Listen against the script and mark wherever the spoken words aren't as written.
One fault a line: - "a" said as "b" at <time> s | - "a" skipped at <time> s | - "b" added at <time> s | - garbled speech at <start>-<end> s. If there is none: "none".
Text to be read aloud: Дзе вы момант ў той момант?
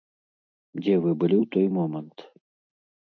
- "момант" said as "былі" at 1.2 s